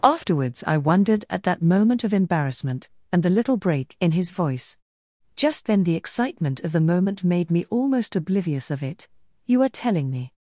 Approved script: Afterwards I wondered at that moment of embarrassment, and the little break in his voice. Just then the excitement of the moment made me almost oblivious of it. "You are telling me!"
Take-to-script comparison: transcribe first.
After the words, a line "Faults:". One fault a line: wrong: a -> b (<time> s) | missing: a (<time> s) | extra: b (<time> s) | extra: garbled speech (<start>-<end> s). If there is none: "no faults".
Afterwards I wondered at that moment of embarrassment, and the little break in his voice. Just then the excitement of the moment made me almost oblivious of it. "You are telling me!"
Faults:
no faults